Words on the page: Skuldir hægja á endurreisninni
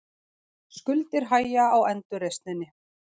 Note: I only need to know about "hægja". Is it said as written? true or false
true